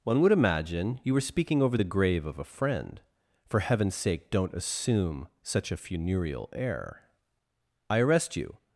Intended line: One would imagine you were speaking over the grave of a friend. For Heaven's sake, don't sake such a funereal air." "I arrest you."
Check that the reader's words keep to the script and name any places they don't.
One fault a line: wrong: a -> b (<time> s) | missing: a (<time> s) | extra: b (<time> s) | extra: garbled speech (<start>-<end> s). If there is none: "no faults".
wrong: sake -> assume (4.5 s)